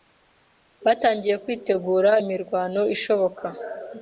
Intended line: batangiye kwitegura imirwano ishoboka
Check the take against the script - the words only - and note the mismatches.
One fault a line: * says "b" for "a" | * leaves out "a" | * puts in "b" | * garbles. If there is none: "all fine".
all fine